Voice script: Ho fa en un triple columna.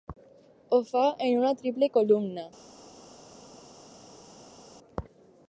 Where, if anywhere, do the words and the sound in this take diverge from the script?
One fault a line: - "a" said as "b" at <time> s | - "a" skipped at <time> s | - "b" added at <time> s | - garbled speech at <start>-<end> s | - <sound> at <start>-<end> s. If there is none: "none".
- "un" said as "una" at 1.4 s